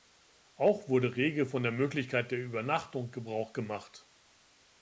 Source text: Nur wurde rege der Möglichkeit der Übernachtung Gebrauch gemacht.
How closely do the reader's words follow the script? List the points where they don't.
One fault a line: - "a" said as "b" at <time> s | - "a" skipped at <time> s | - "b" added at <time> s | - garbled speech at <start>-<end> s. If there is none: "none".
- "Nur" said as "Auch" at 0.6 s
- "von" added at 1.4 s